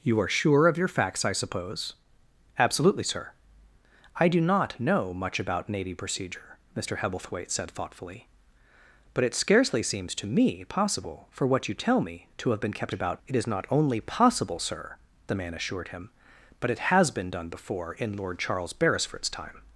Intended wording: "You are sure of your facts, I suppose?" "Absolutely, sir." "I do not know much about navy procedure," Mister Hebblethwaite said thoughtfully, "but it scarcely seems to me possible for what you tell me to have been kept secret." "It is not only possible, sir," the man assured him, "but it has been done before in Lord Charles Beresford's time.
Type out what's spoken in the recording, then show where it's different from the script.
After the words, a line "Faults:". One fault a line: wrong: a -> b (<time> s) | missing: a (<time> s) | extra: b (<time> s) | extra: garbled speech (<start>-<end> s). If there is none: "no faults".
"You are sure of your facts, I suppose?" "Absolutely, sir." "I do not know much about navy procedure," Mister Hebblethwaite said thoughtfully, "but it scarcely seems to me possible for what you tell me to have been kept about." "It is not only possible, sir," the man assured him, "but it has been done before in Lord Charles Beresford's time.
Faults:
wrong: secret -> about (12.9 s)